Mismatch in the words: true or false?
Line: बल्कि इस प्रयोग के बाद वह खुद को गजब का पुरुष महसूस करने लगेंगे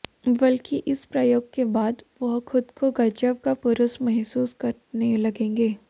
false